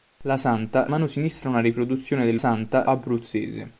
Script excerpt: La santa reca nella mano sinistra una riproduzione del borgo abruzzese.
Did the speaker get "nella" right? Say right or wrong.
wrong